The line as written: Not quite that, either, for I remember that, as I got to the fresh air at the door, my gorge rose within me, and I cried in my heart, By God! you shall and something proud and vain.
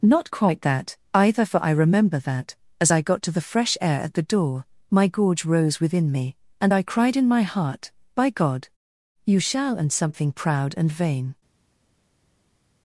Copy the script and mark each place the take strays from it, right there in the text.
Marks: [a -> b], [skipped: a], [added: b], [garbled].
Not quite that, either, for I remember that, as I got to the fresh air at the door, my gorge rose within me, and I cried in my heart, By God! you shall and something proud and vain.